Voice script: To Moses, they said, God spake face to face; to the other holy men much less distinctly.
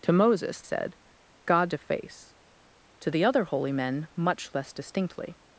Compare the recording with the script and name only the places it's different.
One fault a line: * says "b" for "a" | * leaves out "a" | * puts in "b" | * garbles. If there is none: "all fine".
* leaves out "they"
* leaves out "spake face"